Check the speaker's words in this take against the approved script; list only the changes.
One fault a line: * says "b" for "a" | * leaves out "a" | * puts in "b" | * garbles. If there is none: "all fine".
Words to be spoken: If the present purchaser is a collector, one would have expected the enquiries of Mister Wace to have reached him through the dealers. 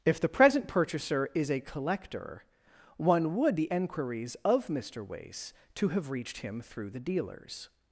* leaves out "have expected"